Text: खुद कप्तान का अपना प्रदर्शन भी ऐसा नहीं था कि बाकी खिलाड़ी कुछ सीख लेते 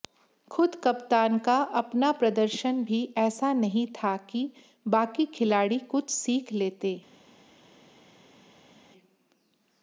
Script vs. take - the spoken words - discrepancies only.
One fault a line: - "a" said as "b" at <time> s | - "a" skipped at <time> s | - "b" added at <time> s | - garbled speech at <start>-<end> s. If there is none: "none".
none